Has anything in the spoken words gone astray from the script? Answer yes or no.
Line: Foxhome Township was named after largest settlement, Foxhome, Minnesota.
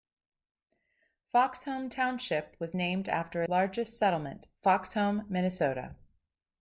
no